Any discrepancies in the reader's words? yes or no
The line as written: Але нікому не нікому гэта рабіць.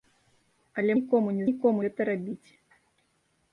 no